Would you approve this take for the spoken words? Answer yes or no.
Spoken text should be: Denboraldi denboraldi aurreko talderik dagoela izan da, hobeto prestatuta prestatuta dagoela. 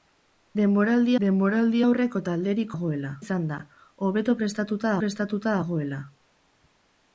yes